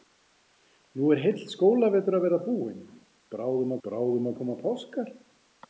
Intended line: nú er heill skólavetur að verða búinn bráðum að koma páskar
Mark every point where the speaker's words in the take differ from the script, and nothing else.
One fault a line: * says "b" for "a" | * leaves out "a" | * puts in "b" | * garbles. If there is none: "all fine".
* puts in "bráðum"